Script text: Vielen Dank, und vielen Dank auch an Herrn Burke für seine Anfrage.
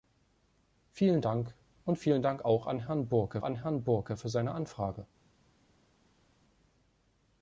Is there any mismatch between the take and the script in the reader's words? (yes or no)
yes